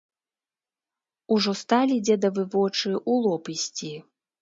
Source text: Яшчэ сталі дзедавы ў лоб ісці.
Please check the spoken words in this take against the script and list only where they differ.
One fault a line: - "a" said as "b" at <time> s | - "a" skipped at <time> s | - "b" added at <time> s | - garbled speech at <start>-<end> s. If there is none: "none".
- "Яшчэ" said as "Ужо" at 1.4 s
- "вочы" added at 2.6 s